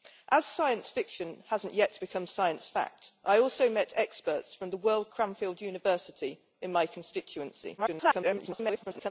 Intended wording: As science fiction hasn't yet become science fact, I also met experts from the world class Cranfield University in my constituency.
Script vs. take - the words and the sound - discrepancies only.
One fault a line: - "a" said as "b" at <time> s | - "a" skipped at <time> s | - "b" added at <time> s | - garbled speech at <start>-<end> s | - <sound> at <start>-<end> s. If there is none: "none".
- "class" skipped at 5.1 s
- garbled speech at 7.8-9.1 s